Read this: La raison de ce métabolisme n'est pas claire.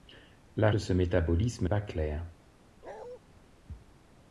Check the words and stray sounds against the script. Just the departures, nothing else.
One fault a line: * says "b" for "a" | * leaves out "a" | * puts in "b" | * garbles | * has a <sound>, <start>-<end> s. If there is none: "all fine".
* leaves out "raison"
* leaves out "n'est"
* has a bark, 2.8-3.2 s